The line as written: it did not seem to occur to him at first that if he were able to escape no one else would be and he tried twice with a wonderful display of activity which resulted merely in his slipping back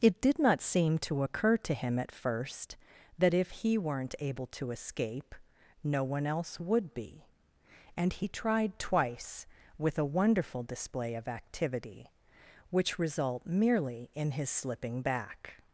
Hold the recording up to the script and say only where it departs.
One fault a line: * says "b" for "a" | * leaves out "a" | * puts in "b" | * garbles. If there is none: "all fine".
* says "weren't" for "were"
* says "result" for "resulted"